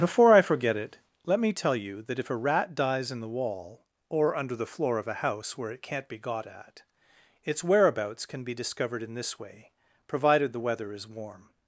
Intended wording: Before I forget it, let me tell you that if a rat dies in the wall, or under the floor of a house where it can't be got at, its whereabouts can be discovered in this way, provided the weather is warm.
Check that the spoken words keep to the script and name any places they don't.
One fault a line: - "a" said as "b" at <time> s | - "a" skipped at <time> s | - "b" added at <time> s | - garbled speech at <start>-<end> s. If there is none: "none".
none